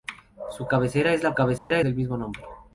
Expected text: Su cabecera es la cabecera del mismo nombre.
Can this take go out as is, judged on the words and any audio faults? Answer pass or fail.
fail